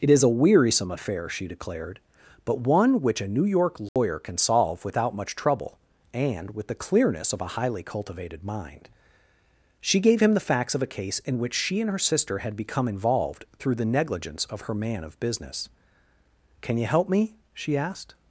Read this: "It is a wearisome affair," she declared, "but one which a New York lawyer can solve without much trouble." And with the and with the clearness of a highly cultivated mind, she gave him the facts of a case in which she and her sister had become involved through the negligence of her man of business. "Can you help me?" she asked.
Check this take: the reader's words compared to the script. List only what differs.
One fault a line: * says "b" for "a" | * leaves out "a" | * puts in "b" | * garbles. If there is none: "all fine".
* leaves out "and with the"